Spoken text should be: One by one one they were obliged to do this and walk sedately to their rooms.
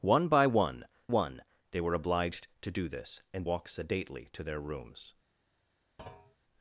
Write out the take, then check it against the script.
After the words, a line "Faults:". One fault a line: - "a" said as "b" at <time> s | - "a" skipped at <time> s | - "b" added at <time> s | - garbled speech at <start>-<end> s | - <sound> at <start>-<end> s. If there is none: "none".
One by one one they were obliged to do this and walk sedately to their rooms.
Faults:
- thud at 6.0-6.4 s